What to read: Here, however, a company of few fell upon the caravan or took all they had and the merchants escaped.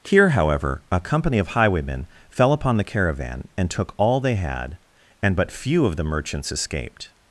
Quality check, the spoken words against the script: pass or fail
fail